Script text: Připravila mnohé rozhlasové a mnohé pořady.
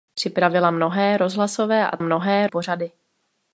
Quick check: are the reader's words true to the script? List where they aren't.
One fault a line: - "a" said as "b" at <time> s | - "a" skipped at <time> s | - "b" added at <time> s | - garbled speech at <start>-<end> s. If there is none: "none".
none